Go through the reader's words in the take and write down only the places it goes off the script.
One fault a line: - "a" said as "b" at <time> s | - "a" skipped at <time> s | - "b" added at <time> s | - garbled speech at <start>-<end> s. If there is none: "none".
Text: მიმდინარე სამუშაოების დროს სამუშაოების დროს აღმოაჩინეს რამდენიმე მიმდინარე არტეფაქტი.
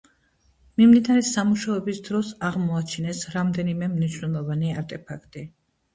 - "სამუშაოების დროს" skipped at 2.3 s
- "მიმდინარე" said as "მნიშვნელოვანი" at 4.0 s